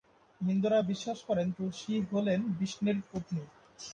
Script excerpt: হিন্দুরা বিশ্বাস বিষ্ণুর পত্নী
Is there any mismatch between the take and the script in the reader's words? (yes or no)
yes